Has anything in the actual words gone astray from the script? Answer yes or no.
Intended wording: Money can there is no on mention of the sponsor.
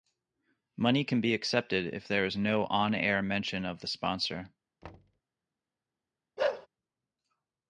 yes